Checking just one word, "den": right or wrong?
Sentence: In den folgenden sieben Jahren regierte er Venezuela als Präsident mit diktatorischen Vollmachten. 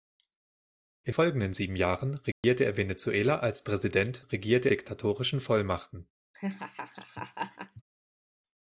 wrong